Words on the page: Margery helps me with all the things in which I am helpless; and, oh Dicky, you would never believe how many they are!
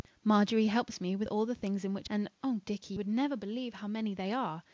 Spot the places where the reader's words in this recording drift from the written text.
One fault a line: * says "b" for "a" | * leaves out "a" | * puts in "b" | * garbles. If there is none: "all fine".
* leaves out "I am helpless"
* leaves out "you"